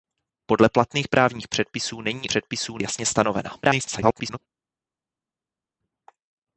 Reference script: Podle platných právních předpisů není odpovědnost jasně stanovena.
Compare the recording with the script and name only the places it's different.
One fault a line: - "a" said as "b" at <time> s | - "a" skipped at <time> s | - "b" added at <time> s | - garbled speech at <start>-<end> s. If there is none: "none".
- "odpovědnost" said as "předpisů" at 2.2 s
- garbled speech at 3.6-4.4 s